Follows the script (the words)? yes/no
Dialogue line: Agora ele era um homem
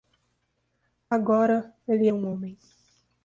no